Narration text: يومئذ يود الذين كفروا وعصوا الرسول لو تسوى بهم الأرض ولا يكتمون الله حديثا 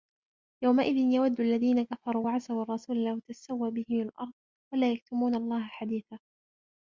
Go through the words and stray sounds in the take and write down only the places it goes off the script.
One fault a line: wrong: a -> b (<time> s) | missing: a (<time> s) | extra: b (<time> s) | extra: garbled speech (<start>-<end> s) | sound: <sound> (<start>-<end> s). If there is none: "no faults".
no faults